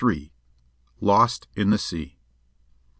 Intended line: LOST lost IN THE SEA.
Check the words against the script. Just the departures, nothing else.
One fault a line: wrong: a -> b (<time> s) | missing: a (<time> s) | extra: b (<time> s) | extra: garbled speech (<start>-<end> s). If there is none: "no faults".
missing: lost (1.5 s)